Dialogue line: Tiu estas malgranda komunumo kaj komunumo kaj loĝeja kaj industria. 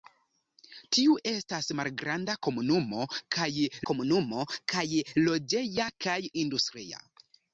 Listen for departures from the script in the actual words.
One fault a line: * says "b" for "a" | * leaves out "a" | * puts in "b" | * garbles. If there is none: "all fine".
all fine